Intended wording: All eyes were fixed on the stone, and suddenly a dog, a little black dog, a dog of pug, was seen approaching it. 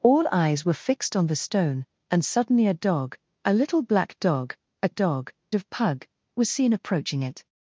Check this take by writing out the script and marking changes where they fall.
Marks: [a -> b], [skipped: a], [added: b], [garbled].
All eyes were fixed on the stone, and suddenly a dog, a little black dog, a dog of pug, was seen approaching it.